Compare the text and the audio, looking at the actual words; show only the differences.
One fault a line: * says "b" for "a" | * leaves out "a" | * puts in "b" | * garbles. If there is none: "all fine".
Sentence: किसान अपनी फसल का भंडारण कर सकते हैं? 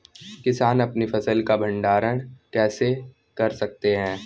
* puts in "कैसे"